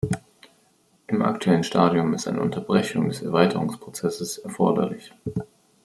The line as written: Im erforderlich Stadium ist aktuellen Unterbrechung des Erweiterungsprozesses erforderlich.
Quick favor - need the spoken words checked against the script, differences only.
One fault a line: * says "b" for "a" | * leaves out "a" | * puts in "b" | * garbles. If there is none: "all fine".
* says "aktuellen" for "erforderlich"
* says "eine" for "aktuellen"